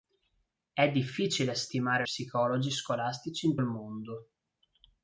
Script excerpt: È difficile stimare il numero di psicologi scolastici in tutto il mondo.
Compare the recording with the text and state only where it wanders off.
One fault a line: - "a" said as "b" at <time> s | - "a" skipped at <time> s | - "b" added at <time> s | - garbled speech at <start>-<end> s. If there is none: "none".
- "il numero di" skipped at 2.0 s
- "tutto" skipped at 3.6 s